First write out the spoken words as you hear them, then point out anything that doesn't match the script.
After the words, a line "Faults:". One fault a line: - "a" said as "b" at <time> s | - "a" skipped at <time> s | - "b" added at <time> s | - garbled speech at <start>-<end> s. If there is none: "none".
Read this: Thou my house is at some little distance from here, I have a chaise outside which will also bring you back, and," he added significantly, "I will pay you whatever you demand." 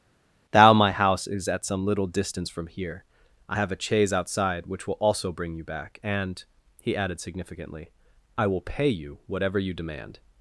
Thou my house is at some little distance from here, I have a chaise outside which will also bring you back, and," he added significantly, "I will pay you whatever you demand."
Faults:
none